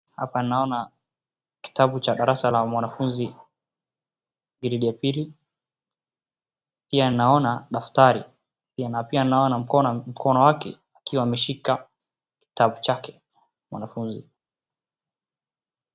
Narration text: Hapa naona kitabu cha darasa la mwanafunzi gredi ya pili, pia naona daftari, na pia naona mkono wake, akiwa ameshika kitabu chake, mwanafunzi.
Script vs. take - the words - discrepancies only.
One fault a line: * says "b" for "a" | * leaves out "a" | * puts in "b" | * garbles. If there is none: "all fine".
all fine